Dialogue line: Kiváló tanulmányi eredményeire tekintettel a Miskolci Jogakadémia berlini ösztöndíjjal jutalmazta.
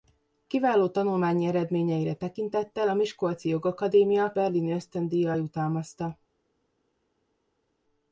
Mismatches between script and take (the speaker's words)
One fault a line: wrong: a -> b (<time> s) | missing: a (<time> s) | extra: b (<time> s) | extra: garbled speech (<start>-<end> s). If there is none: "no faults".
no faults